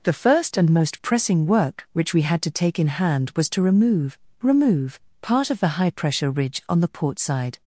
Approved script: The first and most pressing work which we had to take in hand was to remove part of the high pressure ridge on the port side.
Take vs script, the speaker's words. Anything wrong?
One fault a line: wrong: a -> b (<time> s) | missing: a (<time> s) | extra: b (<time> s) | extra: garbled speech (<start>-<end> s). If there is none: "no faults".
extra: remove (4.4 s)